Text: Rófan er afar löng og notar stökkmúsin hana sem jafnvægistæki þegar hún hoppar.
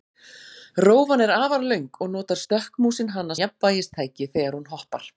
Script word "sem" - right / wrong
wrong